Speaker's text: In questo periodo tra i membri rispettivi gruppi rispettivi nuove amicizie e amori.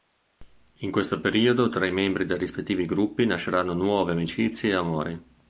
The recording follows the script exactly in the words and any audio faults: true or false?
false